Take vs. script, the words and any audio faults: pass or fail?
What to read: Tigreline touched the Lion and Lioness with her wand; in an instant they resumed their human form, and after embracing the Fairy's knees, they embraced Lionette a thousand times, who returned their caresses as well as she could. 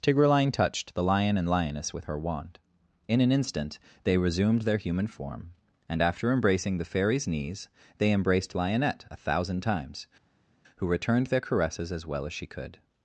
pass